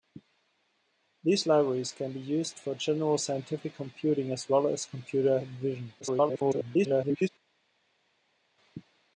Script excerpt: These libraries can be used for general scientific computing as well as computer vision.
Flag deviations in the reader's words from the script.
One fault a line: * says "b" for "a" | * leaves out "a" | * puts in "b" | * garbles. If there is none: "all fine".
* garbles